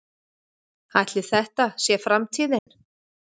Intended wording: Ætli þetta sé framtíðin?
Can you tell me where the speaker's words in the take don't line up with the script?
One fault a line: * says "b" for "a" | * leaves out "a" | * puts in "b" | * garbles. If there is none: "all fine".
all fine